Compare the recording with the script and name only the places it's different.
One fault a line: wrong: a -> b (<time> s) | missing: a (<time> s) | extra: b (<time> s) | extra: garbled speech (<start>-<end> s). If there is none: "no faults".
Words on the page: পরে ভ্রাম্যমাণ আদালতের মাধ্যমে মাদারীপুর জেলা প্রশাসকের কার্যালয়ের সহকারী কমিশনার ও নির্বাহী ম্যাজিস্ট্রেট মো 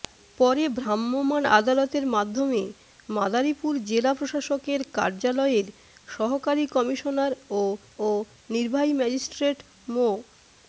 extra: ও (8.0 s)